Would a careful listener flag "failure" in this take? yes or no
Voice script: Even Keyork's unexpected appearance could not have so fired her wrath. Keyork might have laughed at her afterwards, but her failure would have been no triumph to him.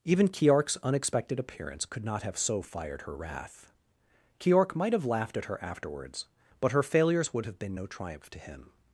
yes